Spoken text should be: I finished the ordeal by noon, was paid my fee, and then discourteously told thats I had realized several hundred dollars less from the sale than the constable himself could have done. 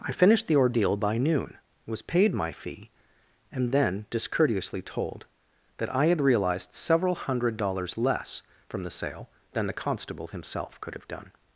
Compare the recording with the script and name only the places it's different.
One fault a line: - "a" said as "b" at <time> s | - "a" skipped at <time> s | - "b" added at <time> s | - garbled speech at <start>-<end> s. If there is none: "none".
- "thats" said as "that" at 5.8 s